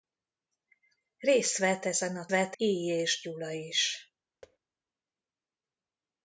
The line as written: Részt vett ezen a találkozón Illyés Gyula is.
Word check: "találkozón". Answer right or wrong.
wrong